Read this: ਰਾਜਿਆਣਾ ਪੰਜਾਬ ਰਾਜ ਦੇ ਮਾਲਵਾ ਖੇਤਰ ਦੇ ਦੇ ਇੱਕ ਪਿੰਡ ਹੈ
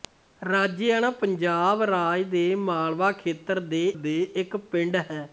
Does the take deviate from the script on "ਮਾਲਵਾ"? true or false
false